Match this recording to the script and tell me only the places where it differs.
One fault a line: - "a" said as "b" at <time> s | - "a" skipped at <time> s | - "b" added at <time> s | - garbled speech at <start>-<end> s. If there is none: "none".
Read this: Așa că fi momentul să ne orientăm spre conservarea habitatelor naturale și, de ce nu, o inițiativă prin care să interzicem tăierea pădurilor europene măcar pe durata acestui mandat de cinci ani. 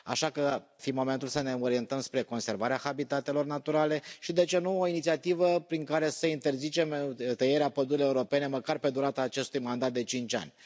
none